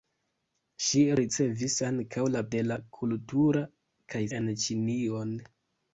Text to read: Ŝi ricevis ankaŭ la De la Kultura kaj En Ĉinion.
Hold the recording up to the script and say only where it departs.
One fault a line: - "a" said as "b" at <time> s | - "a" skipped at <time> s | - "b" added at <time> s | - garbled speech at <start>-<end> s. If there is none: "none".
none